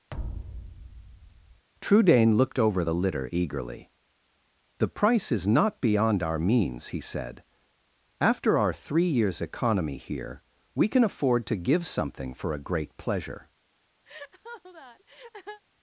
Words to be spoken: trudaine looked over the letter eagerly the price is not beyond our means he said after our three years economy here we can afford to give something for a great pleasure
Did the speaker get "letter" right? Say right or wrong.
wrong